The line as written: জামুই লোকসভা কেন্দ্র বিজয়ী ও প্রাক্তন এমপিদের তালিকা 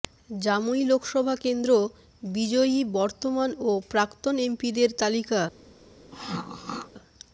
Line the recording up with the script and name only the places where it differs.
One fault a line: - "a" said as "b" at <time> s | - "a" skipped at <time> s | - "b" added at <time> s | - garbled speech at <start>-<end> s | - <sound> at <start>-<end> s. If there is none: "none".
- "বর্তমান" added at 3.0 s
- throat clearing at 6.1-6.9 s